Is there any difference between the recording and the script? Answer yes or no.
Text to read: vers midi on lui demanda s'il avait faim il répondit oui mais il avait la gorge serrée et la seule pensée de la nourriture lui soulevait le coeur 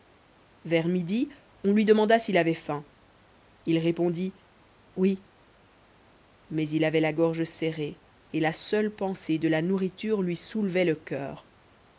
no